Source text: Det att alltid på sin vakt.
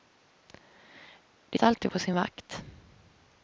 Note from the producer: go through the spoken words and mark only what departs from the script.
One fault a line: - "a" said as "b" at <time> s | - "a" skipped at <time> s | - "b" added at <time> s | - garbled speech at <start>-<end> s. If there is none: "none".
none